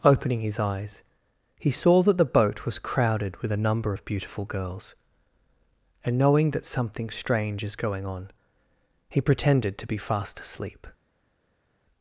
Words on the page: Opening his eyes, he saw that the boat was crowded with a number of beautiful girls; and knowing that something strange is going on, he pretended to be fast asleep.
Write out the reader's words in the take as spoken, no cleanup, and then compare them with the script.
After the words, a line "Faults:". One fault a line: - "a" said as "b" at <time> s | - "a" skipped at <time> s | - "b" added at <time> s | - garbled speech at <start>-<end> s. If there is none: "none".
Opening his eyes, he saw that the boat was crowded with a number of beautiful girls; and knowing that something strange is going on, he pretended to be fast asleep.
Faults:
none